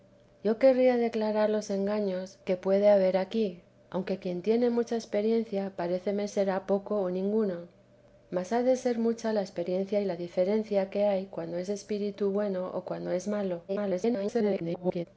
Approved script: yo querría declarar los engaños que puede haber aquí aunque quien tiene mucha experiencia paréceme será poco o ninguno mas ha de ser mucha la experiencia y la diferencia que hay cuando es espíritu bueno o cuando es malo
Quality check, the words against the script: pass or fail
fail